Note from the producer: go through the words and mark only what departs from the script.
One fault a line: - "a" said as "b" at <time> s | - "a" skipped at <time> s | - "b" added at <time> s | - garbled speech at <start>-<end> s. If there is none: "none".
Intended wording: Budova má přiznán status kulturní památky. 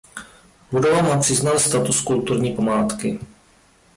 none